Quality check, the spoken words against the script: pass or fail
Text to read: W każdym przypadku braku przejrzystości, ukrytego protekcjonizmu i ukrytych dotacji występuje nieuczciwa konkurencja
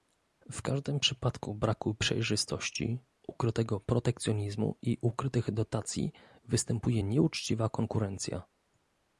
pass